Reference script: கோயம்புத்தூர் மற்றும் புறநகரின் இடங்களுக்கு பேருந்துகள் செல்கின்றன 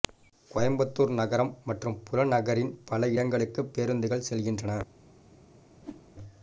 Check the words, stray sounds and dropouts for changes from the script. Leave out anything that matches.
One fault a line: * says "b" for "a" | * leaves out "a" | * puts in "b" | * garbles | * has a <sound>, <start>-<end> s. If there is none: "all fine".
* puts in "நகரம்"
* puts in "பல"
* has a whoosh, 5.8-6.1 s